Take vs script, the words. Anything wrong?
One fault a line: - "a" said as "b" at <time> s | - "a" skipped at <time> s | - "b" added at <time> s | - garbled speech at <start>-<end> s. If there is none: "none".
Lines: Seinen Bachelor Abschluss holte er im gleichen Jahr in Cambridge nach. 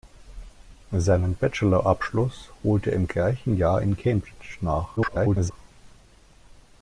- garbled speech at 5.0-5.5 s